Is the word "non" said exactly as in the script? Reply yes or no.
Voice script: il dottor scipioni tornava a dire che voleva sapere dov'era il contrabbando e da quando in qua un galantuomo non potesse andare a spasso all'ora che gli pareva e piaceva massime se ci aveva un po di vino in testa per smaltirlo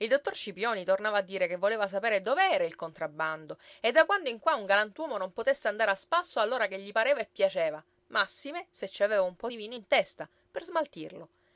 yes